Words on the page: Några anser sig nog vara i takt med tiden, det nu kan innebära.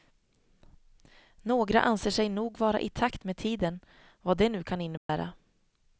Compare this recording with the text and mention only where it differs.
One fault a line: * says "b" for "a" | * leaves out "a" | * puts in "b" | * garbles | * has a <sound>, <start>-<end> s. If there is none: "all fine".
* puts in "vad"
* has a dropout, 5.0-5.1 s